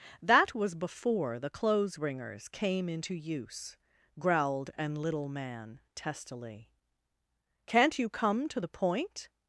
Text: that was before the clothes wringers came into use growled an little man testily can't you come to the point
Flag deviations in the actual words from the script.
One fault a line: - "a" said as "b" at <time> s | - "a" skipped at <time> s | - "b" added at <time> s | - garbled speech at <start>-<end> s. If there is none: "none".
none